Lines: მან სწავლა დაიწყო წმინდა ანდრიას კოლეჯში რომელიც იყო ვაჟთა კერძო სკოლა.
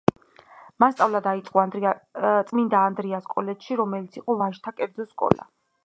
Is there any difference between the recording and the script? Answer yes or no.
no